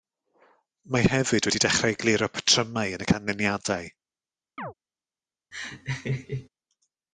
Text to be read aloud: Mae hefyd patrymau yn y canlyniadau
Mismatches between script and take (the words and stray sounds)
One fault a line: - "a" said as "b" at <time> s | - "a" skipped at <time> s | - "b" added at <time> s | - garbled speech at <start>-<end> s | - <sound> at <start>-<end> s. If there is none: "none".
- "wedi dechrau egluro" added at 1.5 s
- chirp at 4.6-4.7 s
- laugh at 5.5-6.5 s